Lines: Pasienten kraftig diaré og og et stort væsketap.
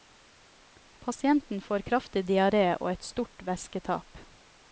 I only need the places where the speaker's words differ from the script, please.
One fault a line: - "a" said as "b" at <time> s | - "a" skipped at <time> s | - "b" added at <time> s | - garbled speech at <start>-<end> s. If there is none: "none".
- "får" added at 1.6 s
- "og" skipped at 2.9 s